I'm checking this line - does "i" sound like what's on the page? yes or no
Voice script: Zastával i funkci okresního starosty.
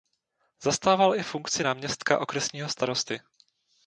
yes